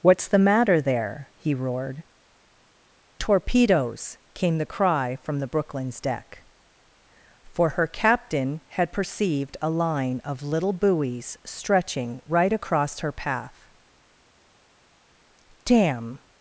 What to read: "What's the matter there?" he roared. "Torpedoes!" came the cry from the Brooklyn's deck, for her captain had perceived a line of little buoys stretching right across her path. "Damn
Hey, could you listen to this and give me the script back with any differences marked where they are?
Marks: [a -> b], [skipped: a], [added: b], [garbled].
"What's the matter there?" he roared. "Torpedoes!" came the cry from the Brooklyn's deck, for her captain had perceived a line of little buoys stretching right across her path. "Damn